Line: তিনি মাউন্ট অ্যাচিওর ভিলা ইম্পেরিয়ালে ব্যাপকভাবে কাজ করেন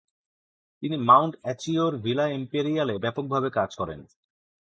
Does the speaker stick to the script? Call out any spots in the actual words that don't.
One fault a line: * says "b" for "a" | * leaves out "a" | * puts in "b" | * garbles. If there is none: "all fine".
all fine